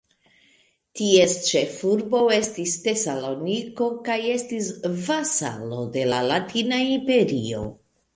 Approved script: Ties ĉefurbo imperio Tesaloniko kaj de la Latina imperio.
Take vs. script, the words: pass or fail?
fail